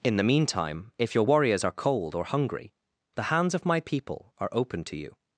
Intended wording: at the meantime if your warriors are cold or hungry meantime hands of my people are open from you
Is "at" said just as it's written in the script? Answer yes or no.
no